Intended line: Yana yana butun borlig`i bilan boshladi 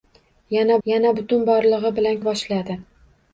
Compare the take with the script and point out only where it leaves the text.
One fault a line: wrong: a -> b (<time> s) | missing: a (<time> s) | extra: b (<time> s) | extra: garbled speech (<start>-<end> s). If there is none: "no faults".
no faults